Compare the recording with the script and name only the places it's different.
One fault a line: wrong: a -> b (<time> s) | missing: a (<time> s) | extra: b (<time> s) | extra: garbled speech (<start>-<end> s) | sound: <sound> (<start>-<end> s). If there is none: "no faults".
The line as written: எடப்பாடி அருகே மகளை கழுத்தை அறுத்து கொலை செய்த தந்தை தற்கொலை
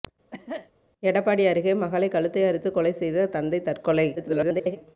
sound: cough (0.3-0.7 s)
extra: garbled speech (4.2-4.8 s)